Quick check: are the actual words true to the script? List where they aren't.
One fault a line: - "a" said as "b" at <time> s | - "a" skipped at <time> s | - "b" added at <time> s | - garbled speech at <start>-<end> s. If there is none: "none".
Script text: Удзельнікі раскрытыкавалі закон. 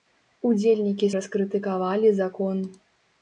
none